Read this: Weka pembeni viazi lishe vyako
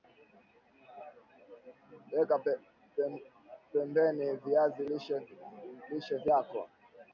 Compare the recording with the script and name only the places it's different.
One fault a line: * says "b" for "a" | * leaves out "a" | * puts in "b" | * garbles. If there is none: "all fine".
all fine